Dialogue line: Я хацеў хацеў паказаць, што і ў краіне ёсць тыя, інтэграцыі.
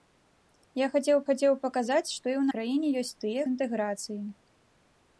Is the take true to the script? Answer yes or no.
yes